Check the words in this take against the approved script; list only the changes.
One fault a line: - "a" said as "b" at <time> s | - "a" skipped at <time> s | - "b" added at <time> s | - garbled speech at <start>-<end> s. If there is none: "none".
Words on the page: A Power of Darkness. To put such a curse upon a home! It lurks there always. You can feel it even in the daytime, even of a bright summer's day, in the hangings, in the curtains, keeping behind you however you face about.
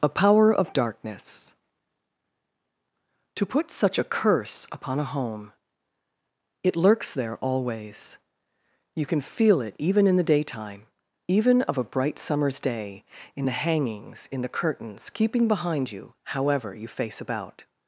none